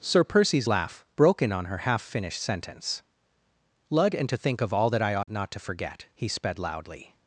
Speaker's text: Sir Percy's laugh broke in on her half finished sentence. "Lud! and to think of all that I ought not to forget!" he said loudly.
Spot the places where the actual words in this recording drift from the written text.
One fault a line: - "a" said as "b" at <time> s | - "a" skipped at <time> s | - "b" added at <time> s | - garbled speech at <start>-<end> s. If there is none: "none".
- "said" said as "sped" at 6.3 s